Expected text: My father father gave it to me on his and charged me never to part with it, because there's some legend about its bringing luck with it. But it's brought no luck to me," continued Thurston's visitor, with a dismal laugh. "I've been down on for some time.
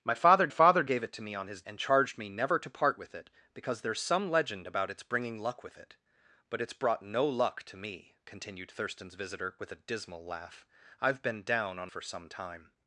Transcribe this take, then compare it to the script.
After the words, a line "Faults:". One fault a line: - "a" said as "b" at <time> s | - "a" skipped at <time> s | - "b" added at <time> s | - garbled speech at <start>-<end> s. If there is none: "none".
My father father gave it to me on his and charged me never to part with it, because there's some legend about its bringing luck with it. But it's brought no luck to me," continued Thurston's visitor, with a dismal laugh. "I've been down on for some time.
Faults:
none